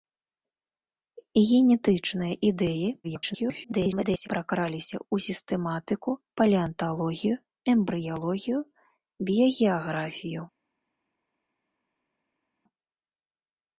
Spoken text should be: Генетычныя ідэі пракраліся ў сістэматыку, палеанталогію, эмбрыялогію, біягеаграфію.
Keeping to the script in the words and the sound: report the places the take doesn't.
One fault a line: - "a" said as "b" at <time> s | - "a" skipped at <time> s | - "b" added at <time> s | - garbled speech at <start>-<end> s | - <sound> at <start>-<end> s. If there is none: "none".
- garbled speech at 3.0-4.3 s